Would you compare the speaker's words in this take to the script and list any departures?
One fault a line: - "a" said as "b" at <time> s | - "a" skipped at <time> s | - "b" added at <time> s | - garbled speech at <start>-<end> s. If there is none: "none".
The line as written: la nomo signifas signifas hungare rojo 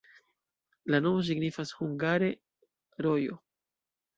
- "signifas" skipped at 1.7 s